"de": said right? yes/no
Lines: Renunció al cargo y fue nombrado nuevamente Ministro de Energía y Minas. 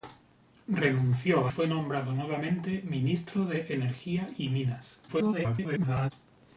yes